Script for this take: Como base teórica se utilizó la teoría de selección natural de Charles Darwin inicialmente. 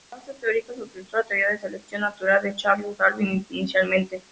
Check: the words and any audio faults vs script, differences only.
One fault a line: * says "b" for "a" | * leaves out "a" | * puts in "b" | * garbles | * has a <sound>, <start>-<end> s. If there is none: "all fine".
all fine